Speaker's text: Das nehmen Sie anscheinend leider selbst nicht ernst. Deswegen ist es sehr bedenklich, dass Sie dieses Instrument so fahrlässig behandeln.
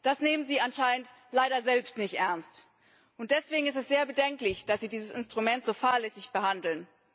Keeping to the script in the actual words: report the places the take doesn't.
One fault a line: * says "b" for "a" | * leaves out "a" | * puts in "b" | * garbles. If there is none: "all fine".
all fine